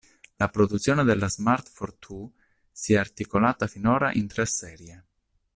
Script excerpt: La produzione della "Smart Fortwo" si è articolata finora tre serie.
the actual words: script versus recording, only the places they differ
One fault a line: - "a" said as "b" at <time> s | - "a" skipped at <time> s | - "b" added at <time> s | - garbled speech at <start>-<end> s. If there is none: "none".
- "in" added at 4.1 s